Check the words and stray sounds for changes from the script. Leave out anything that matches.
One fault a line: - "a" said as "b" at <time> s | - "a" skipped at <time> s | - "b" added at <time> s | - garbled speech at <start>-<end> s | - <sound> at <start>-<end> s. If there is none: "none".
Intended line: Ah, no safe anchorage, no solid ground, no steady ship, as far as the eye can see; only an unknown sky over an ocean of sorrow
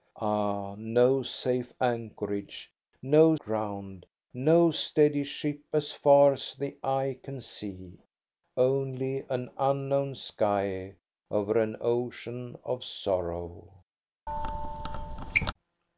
- "solid" skipped at 3.4 s
- squeak at 14.3-15.5 s